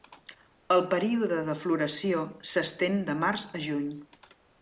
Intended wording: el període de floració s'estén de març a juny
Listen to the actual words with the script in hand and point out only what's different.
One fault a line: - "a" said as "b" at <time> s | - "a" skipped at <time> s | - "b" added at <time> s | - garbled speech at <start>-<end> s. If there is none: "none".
none